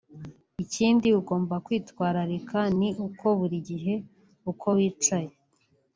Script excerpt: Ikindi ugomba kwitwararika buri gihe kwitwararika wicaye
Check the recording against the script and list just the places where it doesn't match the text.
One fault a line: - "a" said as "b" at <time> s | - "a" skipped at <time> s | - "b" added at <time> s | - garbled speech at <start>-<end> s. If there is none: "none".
- "ni uko" added at 2.8 s
- "kwitwararika" said as "uko" at 4.5 s